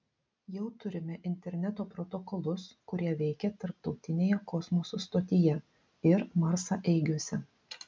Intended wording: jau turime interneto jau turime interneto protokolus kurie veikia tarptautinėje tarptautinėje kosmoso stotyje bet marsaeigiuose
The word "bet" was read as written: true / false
false